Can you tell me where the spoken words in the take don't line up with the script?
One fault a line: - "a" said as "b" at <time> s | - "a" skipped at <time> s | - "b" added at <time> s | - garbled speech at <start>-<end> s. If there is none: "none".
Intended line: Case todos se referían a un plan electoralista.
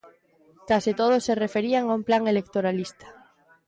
none